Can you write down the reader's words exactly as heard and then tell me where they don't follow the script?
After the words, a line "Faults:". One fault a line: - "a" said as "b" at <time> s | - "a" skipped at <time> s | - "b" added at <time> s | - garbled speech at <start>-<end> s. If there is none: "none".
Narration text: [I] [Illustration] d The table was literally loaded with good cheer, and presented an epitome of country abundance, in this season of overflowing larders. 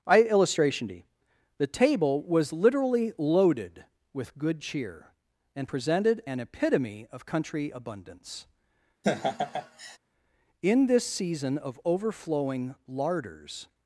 [I] [Illustration] d The table was literally loaded with good cheer, and presented an epitome of country abundance, in this season of overflowing larders.
Faults:
none